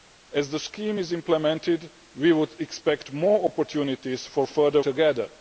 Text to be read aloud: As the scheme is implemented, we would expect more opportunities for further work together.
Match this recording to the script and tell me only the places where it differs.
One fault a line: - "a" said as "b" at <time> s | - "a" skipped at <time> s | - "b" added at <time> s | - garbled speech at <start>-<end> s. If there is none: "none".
- "work" skipped at 4.8 s